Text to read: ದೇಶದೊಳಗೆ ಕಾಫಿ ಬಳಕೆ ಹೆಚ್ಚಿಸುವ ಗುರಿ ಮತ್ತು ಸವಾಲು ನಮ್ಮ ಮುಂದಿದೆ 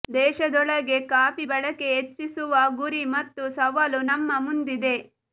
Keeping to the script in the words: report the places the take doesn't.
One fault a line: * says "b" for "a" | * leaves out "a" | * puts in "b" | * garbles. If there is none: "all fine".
all fine